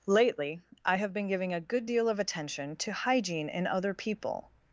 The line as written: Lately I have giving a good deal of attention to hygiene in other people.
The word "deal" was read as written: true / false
true